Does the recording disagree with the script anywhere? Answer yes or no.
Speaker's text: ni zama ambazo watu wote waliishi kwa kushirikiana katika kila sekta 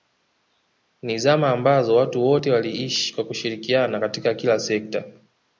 no